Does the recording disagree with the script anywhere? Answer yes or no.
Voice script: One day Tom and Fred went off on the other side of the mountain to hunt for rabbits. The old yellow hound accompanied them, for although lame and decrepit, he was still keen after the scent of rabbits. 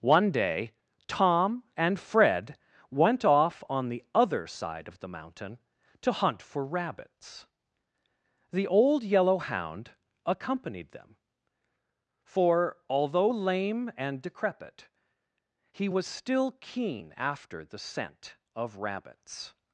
no